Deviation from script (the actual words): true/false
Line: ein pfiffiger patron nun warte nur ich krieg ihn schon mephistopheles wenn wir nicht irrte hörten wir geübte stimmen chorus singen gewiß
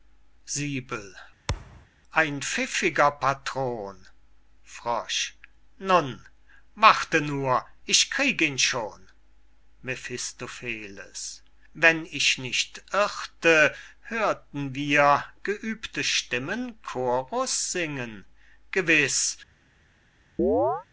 true